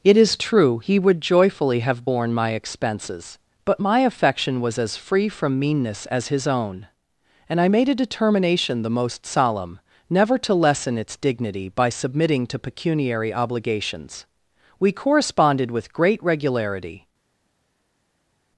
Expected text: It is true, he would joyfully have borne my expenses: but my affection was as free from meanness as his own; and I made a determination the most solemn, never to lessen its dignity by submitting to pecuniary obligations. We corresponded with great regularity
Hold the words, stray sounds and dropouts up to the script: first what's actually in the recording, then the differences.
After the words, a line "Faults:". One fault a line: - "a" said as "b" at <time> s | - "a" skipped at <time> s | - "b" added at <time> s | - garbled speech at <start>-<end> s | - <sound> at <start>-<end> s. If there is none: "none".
It is true, he would joyfully have borne my expenses: but my affection was as free from meanness as his own; and I made a determination the most solemn, never to lessen its dignity by submitting to pecuniary obligations. We corresponded with great regularity
Faults:
none